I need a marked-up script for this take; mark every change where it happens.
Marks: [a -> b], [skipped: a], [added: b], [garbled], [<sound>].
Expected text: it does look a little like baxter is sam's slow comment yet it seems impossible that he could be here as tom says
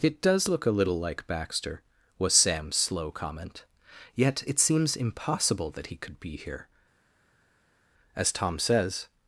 it does look a little like baxter [is -> was] sam's slow comment yet it seems impossible that he could be here as tom says